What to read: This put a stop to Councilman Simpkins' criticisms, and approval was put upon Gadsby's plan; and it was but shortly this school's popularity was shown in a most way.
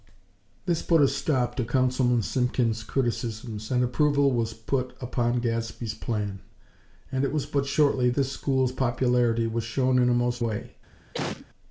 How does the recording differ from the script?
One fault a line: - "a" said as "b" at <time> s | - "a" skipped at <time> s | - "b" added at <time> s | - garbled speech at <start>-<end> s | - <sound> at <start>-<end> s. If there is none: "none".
- cough at 11.1-11.5 s